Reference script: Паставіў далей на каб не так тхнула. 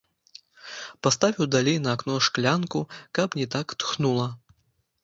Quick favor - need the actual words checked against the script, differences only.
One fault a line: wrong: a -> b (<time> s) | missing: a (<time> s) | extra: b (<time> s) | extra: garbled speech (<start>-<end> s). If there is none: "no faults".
extra: акно шклянку (2.0 s)